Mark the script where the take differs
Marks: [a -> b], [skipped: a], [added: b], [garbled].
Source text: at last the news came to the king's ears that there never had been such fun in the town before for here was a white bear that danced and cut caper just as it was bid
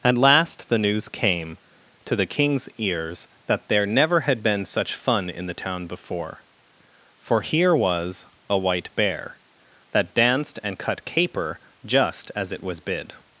at last the news came to the king's ears that there never had been such fun in the town before for here was a white bear that danced and cut caper just as it was bid